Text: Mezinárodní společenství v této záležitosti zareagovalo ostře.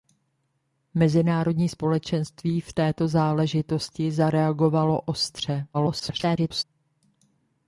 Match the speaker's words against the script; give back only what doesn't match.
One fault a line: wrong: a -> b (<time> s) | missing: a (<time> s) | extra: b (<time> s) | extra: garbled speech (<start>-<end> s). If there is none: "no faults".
extra: garbled speech (5.7-6.6 s)